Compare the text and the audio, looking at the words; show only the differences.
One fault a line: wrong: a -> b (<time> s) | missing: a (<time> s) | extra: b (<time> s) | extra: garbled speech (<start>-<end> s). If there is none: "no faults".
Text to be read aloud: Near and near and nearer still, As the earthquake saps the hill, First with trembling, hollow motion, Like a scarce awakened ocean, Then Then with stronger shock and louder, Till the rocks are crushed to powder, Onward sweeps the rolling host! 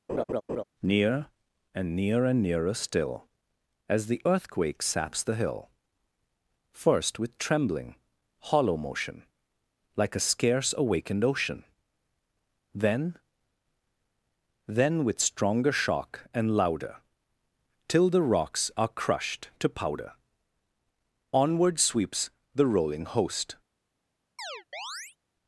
no faults